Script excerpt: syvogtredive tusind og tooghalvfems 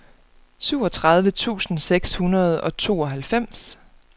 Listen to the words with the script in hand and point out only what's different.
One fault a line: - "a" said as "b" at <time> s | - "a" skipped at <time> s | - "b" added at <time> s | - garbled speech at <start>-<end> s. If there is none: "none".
- "seks hundrede" added at 1.8 s